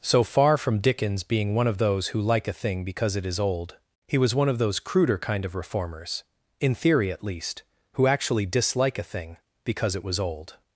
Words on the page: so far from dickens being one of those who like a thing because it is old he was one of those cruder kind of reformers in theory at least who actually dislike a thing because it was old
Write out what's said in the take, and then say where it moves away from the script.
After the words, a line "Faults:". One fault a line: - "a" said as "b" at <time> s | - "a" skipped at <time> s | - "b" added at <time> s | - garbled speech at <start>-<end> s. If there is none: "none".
so far from dickens being one of those who like a thing because it is old he was one of those cruder kind of reformers in theory at least who actually dislike a thing because it was old
Faults:
none